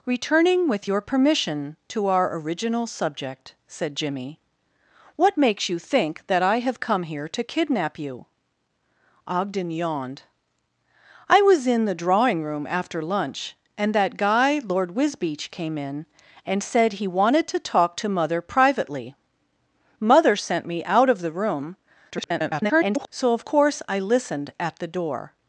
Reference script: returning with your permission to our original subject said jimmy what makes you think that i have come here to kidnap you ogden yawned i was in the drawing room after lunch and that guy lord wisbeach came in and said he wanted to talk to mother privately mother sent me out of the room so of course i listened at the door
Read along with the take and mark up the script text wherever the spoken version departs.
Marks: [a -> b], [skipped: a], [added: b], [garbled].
returning with your permission to our original subject said jimmy what makes you think that i have come here to kidnap you ogden yawned i was in the drawing room after lunch and that guy lord wisbeach came in and said he wanted to talk to mother privately mother sent me out of the room [garbled] so of course i listened at the door